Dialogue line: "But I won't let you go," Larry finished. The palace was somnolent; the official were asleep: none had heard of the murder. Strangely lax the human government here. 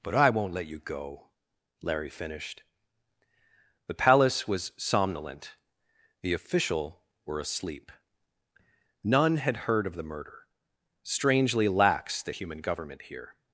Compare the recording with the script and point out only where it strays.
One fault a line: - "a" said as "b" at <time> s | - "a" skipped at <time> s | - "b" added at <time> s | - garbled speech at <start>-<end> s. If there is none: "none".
none